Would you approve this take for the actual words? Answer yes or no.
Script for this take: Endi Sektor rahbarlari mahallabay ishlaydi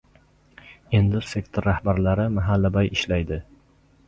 yes